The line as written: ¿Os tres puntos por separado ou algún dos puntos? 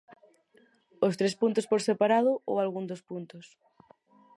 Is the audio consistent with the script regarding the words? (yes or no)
yes